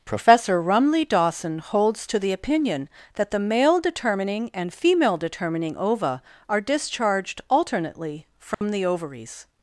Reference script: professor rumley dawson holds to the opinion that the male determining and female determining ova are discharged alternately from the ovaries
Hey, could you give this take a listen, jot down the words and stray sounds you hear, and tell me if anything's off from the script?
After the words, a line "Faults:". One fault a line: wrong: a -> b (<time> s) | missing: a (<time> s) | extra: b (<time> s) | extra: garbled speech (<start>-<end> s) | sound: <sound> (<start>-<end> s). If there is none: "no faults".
professor rumley dawson holds to the opinion that the male determining and female determining ova are discharged alternately from the ovaries
Faults:
sound: dropout (8.5-8.6 s)